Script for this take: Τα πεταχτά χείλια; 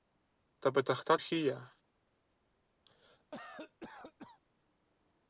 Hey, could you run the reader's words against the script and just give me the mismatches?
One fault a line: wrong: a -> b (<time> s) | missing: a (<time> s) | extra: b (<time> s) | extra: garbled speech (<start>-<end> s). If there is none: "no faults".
no faults